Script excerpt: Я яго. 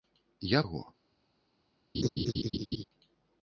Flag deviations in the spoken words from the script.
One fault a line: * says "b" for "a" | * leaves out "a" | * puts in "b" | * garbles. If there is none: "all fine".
all fine